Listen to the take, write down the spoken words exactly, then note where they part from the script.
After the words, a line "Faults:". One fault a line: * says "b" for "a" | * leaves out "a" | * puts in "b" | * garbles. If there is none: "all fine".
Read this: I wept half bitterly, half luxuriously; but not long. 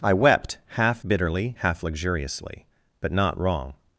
I wept half bitterly, half luxuriously; but not wrong.
Faults:
* says "wrong" for "long"